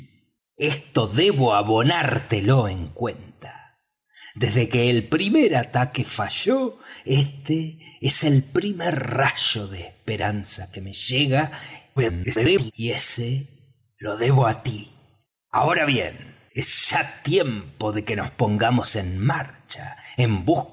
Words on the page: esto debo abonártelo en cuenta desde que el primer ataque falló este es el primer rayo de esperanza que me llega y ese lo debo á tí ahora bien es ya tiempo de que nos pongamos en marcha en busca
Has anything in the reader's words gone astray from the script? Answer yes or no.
yes